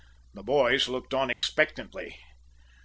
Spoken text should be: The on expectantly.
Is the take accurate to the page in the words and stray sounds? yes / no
no